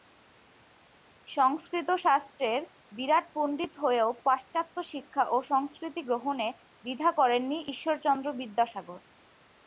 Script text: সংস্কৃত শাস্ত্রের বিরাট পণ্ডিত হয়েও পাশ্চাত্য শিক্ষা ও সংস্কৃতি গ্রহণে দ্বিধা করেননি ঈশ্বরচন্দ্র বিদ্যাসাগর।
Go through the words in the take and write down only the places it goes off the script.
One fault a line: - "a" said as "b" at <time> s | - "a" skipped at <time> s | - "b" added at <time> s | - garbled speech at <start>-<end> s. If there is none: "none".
none